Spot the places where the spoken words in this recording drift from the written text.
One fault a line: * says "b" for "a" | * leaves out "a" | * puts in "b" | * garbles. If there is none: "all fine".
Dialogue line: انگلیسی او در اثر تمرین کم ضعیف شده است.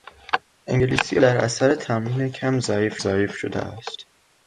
* leaves out "او"
* puts in "ضعیف"